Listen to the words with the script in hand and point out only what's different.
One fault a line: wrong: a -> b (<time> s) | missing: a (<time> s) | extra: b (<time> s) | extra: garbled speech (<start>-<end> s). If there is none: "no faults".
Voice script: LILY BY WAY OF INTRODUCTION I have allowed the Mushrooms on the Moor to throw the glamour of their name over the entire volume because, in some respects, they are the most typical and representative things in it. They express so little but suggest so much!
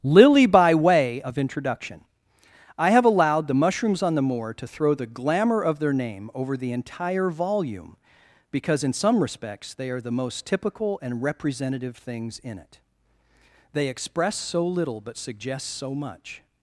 no faults